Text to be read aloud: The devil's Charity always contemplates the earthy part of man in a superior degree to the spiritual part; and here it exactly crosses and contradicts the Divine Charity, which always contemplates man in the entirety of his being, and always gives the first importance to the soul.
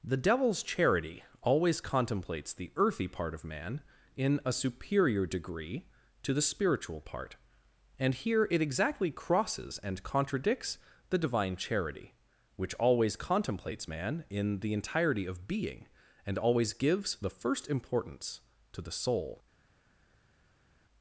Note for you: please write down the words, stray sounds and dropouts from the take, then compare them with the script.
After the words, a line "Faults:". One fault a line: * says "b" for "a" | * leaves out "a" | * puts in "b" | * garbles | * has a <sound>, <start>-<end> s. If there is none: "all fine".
The devil's Charity always contemplates the earthy part of man in a superior degree to the spiritual part; and here it exactly crosses and contradicts the Divine Charity, which always contemplates man in the entirety of being, and always gives the first importance to the soul.
Faults:
* leaves out "his"